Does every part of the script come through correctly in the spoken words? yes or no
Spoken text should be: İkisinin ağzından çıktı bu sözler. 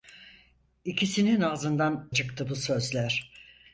yes